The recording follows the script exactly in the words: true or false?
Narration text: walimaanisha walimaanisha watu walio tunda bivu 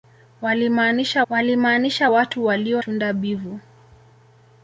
true